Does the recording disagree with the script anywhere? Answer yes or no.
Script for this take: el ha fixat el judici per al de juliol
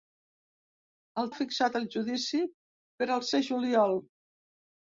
no